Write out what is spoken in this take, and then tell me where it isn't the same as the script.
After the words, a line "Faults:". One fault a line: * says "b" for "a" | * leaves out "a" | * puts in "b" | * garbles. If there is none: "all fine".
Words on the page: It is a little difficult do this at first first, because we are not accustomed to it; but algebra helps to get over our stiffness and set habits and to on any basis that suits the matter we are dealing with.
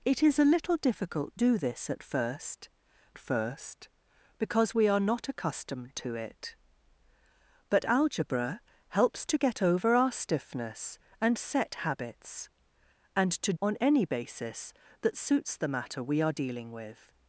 It is a little difficult do this at first first, because we are not accustomed to it; but algebra helps to get over our stiffness and set habits and to on any basis that suits the matter we are dealing with.
Faults:
all fine